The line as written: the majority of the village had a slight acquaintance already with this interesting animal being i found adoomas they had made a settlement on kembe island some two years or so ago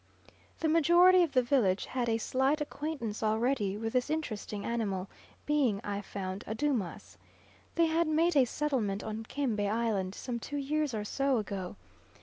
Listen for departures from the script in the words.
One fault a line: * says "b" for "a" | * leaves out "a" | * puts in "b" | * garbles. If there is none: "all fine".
all fine